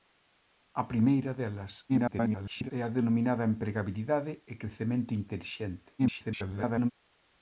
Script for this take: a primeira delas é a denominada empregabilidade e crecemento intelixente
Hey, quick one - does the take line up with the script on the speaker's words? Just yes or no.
no